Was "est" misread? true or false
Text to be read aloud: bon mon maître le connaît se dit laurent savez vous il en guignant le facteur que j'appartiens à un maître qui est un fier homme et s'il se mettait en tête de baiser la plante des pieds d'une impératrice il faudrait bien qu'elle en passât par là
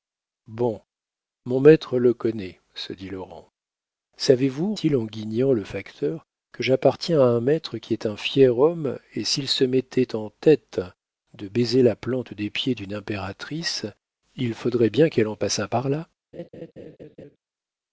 false